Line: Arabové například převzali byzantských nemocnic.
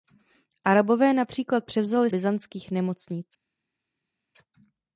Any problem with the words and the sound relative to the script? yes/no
no